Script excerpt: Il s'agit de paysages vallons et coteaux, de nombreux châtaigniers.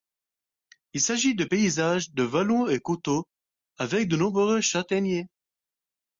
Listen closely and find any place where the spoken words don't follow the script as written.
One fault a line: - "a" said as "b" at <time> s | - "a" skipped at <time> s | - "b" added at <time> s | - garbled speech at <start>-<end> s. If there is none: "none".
- "de" added at 2.1 s
- "avec" added at 3.8 s